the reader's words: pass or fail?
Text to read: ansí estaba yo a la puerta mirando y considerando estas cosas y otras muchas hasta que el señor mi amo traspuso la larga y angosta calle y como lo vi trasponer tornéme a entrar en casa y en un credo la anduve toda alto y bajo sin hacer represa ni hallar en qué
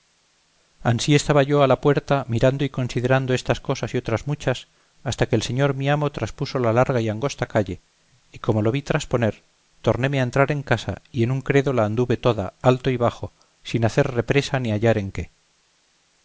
pass